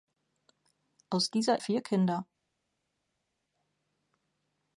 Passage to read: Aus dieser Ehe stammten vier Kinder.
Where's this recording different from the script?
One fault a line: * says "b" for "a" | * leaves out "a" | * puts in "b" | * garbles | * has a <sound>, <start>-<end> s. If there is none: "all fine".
* leaves out "Ehe stammten"